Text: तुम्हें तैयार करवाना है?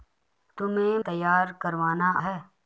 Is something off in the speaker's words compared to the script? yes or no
no